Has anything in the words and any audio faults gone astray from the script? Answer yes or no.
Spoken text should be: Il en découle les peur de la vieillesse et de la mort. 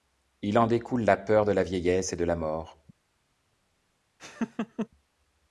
yes